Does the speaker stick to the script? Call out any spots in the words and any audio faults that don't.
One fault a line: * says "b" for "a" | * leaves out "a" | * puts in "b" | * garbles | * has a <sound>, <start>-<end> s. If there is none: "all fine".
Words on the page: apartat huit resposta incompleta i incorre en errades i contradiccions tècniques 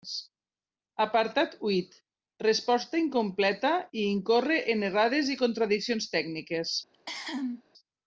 * has a cough, 6.9-7.6 s